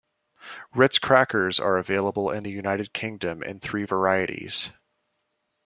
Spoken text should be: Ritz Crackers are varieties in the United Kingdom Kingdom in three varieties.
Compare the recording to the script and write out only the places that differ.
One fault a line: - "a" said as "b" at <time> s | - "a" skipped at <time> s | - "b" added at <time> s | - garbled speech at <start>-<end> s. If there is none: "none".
- "varieties" said as "available" at 1.8 s
- "Kingdom" skipped at 3.4 s